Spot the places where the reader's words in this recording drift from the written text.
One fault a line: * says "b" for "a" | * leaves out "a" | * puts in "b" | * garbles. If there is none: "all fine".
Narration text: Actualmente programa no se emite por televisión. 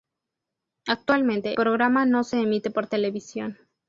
all fine